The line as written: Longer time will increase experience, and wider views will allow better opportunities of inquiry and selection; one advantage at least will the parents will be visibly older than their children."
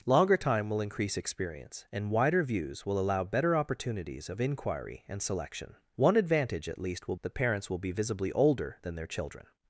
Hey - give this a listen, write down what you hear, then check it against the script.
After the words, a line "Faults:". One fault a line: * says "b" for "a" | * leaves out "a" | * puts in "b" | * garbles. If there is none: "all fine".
Longer time will increase experience, and wider views will allow better opportunities of inquiry and selection; one advantage at least will the parents will be visibly older than their children."
Faults:
all fine